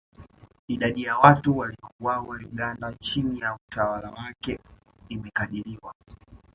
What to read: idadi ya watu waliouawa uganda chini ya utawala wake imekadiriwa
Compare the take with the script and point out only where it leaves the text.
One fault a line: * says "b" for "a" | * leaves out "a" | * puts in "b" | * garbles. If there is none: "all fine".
all fine